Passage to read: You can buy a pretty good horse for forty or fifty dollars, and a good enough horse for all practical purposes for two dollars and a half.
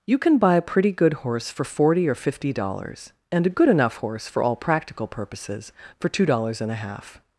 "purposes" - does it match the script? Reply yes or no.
yes